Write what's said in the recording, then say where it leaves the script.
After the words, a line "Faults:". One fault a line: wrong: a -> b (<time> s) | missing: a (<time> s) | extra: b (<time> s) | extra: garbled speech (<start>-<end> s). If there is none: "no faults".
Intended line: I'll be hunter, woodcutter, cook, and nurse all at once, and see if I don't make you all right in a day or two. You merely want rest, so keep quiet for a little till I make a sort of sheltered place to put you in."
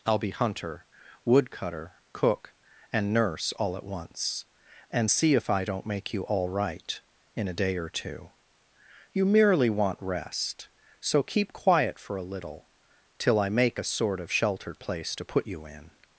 I'll be hunter, woodcutter, cook, and nurse all at once, and see if I don't make you all right in a day or two. You merely want rest, so keep quiet for a little till I make a sort of sheltered place to put you in."
Faults:
no faults